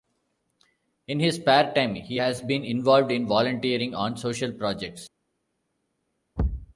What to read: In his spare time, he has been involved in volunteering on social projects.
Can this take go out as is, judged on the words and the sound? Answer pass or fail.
fail